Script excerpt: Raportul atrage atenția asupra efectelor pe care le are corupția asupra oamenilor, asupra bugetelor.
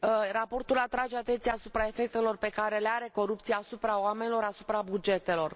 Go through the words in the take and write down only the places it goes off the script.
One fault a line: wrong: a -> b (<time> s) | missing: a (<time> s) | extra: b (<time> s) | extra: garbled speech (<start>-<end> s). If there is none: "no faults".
no faults